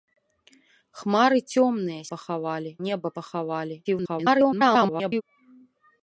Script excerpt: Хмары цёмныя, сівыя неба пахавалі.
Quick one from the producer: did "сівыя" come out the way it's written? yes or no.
no